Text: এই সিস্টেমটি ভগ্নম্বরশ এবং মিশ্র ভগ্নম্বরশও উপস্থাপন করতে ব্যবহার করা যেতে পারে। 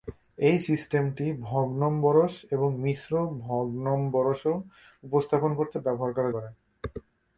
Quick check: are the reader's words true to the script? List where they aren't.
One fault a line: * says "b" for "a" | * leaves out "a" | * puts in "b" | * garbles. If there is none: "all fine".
* leaves out "যেতে"